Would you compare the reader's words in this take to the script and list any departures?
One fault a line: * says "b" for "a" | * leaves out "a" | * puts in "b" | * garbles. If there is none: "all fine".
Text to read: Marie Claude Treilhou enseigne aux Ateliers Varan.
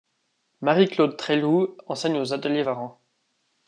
all fine